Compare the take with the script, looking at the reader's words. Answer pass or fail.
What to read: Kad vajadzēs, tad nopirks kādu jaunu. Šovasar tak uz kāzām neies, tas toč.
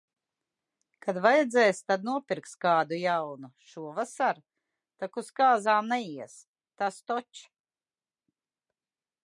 pass